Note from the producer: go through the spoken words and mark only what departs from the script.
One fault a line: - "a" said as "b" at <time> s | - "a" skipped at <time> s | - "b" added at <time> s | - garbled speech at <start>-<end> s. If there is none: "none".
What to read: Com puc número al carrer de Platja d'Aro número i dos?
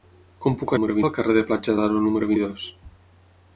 none